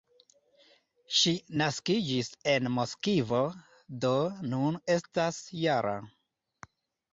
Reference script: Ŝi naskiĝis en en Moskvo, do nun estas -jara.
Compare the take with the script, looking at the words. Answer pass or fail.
fail